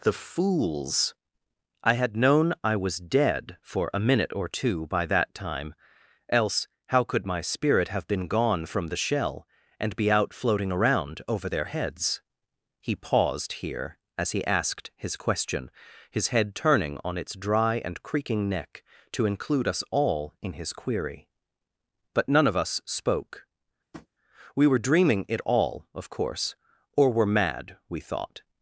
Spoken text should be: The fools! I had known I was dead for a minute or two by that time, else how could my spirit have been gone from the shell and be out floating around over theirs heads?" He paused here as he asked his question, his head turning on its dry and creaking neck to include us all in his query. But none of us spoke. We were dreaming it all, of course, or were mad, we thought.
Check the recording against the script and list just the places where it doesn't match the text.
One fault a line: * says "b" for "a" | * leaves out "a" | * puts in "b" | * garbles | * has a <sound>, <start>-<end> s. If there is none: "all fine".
* says "their" for "theirs"
* has a tap, 23.9-24.1 s